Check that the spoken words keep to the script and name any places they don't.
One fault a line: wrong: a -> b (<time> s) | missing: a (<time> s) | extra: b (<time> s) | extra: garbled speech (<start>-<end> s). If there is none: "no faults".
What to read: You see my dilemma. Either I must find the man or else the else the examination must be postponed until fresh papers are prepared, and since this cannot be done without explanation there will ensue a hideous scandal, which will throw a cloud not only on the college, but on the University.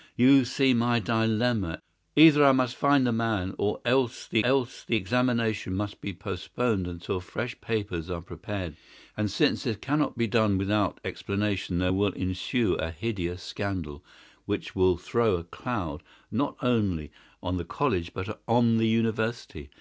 no faults